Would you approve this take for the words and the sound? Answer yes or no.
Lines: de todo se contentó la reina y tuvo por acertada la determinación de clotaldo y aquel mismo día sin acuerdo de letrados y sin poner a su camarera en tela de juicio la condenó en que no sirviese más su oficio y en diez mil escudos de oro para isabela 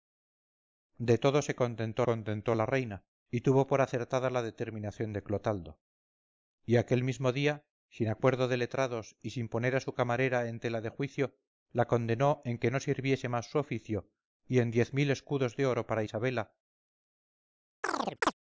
no